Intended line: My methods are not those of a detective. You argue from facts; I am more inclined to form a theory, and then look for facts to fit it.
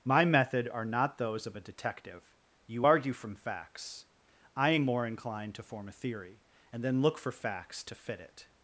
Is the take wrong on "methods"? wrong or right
wrong